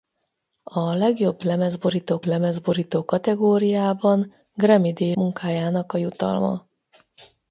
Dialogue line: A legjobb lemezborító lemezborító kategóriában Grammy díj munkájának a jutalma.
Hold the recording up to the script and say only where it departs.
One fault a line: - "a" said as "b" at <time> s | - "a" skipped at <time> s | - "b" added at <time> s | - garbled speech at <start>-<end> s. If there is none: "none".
none